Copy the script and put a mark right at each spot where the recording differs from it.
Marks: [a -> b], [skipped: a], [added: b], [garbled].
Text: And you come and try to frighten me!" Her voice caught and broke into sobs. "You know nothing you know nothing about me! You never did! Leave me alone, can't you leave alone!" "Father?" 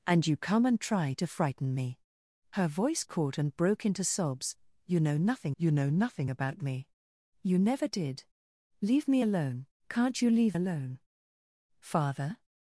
And you come and try to frighten me!" Her voice caught and broke into sobs. "You know nothing you know nothing about me! You never did! Leave me alone, can't you leave alone!" "Father?"